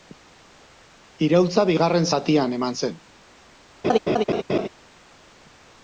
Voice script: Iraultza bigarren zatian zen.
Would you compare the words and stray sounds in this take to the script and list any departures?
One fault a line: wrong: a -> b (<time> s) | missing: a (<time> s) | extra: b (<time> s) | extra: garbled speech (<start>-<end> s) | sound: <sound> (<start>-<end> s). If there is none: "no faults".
extra: eman (2.6 s)
sound: laugh (3.8-4.7 s)